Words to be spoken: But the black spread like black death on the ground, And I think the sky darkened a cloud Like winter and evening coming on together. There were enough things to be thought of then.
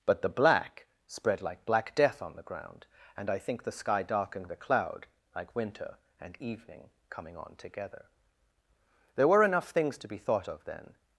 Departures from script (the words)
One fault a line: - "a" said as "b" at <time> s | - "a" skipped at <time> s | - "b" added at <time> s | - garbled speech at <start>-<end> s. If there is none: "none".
none